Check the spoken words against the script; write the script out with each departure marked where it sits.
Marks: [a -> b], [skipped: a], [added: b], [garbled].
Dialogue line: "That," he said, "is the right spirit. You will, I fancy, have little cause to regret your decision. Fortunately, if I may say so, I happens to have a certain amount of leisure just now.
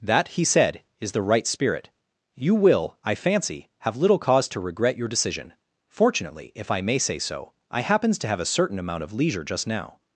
"That," he said, "is the right spirit. You will, I fancy, have little cause to regret your decision. Fortunately, if I may say so, I happens to have a certain amount of leisure just now.